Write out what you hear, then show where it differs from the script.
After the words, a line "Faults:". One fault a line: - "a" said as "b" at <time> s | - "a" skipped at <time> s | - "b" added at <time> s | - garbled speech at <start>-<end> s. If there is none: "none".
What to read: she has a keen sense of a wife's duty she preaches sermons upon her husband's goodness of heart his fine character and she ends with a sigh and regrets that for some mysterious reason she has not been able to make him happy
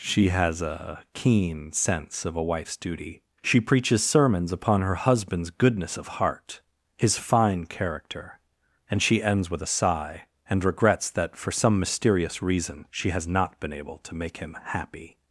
she has a keen sense of a wife's duty she preaches sermons upon her husband's goodness of heart his fine character and she ends with a sigh and regrets that for some mysterious reason she has not been able to make him happy
Faults:
none